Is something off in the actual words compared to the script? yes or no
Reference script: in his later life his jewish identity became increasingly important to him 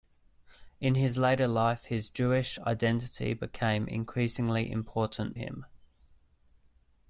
yes